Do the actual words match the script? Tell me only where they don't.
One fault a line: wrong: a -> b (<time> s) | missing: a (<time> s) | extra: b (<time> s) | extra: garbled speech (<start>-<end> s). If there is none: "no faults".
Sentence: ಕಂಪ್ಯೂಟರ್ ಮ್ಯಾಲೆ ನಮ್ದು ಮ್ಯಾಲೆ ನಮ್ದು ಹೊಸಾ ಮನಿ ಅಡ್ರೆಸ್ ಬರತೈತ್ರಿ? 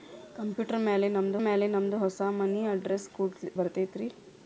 no faults